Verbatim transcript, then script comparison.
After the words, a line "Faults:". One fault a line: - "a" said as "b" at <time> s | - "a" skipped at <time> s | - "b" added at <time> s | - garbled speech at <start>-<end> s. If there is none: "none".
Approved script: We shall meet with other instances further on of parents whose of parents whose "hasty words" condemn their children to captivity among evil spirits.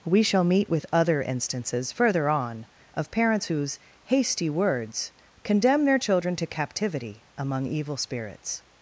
We shall meet with other instances further on of parents whose "hasty words" condemn their children to captivity among evil spirits.
Faults:
- "of parents whose" skipped at 3.8 s